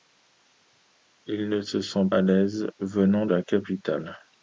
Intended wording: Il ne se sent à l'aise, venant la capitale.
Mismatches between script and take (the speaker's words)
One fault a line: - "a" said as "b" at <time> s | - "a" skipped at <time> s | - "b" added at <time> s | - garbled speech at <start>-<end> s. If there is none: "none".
none